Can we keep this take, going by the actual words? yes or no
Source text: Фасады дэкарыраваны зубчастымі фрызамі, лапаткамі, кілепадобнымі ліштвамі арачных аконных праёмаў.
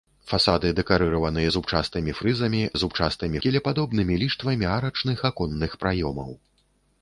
no